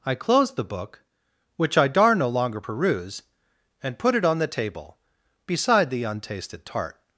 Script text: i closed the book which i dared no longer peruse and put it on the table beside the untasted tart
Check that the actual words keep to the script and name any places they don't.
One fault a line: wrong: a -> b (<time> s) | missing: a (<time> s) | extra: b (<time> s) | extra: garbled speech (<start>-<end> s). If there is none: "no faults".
wrong: dared -> dar (1.9 s)